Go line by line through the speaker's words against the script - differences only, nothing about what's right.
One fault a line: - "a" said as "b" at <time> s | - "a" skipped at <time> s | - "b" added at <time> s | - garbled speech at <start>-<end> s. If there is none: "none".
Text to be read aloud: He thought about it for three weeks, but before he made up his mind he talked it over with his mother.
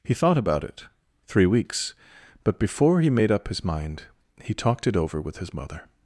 - "for" skipped at 0.9 s